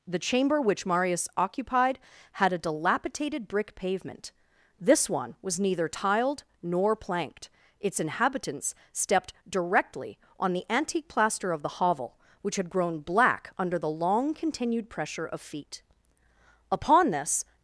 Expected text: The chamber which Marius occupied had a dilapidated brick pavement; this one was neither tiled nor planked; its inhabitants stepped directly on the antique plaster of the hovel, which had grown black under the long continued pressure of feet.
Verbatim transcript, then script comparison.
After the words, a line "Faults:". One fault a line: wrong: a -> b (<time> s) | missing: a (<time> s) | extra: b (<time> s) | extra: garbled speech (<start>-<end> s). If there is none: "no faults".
The chamber which Marius occupied had a dilapidated brick pavement; this one was neither tiled nor planked; its inhabitants stepped directly on the antique plaster of the hovel, which had grown black under the long continued pressure of feet. Upon this
Faults:
extra: Upon this (16.7 s)